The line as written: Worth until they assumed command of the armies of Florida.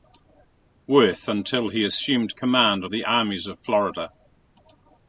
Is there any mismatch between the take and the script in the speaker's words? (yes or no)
yes